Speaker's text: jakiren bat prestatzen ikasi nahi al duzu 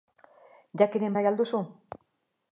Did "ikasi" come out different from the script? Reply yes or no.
yes